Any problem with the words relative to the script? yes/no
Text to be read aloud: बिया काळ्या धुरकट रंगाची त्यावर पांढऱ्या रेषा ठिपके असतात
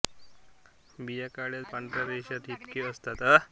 yes